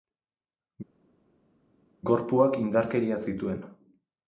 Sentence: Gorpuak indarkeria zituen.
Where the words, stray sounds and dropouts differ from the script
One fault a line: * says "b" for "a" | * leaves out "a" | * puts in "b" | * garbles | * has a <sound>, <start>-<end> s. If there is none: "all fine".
all fine